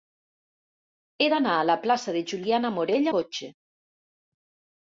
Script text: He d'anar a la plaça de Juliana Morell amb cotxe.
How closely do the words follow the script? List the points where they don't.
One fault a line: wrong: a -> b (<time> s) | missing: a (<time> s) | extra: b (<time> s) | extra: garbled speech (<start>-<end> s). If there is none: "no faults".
missing: amb (3.1 s)